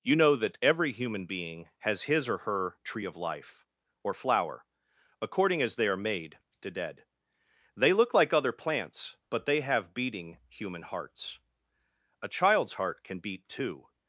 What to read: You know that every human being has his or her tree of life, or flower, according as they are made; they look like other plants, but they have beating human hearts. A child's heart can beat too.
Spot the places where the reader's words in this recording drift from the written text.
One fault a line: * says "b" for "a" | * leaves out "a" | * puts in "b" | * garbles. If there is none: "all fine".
* puts in "to dead"